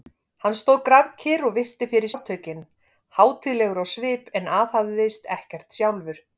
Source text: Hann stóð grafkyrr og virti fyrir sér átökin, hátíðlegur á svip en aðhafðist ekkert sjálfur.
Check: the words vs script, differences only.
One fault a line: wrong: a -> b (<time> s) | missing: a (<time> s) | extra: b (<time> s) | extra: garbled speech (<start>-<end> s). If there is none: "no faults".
missing: sér (2.1 s)